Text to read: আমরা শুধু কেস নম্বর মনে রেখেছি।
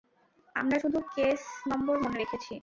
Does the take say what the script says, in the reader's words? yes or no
yes